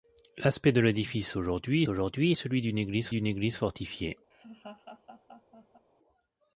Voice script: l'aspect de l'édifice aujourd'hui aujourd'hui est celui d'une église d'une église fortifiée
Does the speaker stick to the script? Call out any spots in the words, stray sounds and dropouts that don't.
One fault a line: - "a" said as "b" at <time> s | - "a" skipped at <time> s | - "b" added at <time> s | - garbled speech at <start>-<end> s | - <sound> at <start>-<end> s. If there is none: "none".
- laugh at 4.3-5.9 s